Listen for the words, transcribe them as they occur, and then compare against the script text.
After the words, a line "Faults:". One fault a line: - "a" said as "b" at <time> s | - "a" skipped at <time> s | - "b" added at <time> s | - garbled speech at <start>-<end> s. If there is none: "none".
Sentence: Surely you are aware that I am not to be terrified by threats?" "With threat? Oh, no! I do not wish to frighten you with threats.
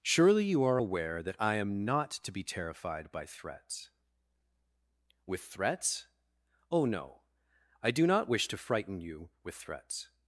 Surely you are aware that I am not to be terrified by threats?" "With threats? Oh, no! I do not wish to frighten you with threats.
Faults:
- "threat" said as "threats" at 5.4 s